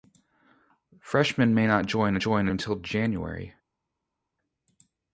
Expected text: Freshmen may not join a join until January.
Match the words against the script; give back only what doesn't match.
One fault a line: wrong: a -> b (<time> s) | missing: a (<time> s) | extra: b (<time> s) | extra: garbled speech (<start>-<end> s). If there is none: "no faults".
no faults